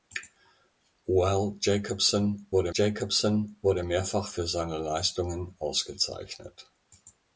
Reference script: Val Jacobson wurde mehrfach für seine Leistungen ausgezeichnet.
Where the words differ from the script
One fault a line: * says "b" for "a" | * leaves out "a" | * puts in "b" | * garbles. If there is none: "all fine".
* puts in "Jacobson wurde"